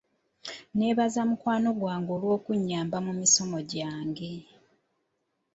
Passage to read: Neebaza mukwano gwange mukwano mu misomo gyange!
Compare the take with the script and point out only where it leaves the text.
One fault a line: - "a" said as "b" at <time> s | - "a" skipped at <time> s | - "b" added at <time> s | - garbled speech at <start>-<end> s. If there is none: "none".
- "mukwano" said as "olw'okunnyamba" at 2.1 s